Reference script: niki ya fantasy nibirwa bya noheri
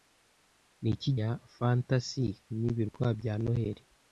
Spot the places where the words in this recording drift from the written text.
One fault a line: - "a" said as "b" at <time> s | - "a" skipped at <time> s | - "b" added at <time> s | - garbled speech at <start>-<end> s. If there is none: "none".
none